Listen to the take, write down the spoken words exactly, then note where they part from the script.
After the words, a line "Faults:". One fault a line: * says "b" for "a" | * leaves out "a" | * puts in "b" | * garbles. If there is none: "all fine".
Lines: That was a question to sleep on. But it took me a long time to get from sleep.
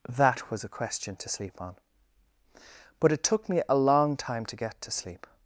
That was a question to sleep on. But it took me a long time to get to sleep.
Faults:
* says "to" for "from"